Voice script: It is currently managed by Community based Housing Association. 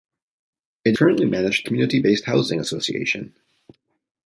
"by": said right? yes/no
no